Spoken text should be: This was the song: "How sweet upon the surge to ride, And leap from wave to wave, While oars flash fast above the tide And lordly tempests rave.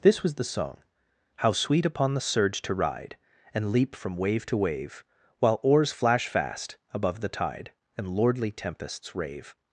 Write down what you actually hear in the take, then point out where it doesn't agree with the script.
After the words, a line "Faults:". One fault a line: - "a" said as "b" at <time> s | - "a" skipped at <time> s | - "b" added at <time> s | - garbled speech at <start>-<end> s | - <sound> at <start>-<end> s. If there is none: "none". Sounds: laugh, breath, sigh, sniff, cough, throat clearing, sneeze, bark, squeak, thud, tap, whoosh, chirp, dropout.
This was the song: "How sweet upon the surge to ride, And leap from wave to wave, While oars flash fast above the tide And lordly tempests rave.
Faults:
none